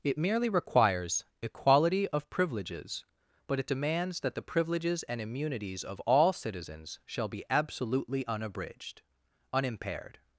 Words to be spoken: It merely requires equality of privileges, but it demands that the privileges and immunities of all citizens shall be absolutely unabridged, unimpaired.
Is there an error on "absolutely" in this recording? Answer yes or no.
no